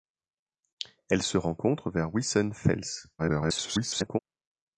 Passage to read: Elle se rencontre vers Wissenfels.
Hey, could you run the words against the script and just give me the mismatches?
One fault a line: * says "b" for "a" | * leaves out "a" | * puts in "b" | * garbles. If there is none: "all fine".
* garbles